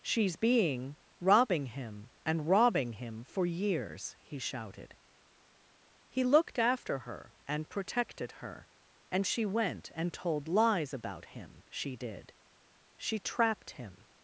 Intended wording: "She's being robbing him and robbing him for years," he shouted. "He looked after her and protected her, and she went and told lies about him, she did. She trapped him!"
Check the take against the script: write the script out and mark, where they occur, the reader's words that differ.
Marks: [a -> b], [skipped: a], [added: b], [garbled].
"She's being robbing him and robbing him for years," he shouted. "He looked after her and protected her, and she went and told lies about him, she did. She trapped him!"